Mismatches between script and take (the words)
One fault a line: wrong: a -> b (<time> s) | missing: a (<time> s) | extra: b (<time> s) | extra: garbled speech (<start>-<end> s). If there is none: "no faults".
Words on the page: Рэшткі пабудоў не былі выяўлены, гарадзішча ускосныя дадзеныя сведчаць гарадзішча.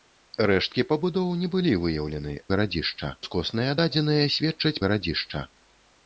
no faults